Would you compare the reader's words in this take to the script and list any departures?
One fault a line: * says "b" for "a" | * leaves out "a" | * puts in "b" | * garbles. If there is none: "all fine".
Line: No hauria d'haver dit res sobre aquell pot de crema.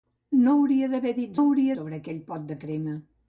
* says "hauria" for "res"